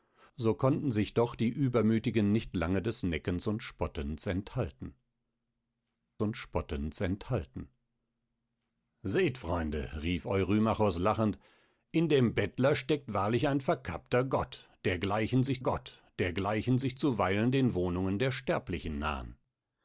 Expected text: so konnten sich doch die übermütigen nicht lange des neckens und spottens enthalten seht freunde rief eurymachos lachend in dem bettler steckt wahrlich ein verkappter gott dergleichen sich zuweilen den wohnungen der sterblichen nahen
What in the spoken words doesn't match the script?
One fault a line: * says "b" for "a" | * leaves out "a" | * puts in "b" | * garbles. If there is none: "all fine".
* puts in "und spottens enthalten"
* puts in "gott dergleichen sich"